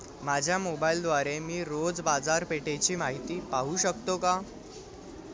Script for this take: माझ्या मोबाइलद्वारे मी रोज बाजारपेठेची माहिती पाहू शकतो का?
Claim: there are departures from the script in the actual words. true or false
false